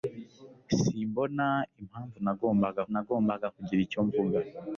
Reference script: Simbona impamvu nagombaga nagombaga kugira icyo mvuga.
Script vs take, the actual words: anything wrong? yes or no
no